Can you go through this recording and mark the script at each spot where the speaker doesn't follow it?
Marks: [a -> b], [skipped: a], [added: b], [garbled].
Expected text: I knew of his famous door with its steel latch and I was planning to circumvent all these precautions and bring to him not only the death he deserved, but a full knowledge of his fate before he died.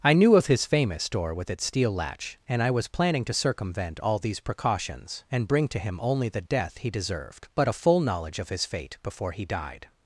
I knew of his famous door with its steel latch and I was planning to circumvent all these precautions and bring to him [skipped: not] only the death he deserved, but a full knowledge of his fate before he died.